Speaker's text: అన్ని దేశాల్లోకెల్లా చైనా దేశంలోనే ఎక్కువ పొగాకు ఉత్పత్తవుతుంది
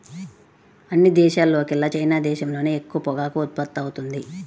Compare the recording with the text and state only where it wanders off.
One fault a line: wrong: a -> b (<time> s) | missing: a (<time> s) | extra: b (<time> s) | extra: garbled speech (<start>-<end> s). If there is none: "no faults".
no faults